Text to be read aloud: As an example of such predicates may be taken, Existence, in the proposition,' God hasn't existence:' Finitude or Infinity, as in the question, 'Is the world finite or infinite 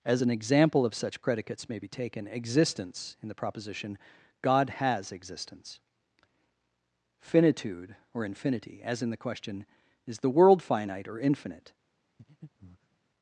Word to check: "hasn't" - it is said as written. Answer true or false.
false